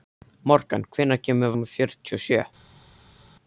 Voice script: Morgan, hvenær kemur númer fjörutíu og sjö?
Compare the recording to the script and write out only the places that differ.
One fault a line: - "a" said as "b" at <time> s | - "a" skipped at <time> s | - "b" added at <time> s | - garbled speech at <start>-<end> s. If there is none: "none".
none